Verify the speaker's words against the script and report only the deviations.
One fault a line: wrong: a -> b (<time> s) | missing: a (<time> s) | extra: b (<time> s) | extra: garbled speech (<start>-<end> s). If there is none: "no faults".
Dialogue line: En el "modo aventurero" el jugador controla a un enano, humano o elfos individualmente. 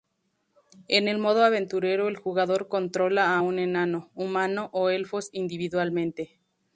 no faults